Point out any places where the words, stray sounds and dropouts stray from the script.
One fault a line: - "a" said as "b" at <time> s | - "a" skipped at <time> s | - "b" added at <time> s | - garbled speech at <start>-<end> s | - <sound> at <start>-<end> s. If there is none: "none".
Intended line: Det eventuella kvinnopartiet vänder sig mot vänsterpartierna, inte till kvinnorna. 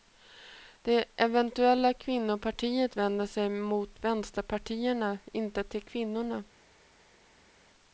none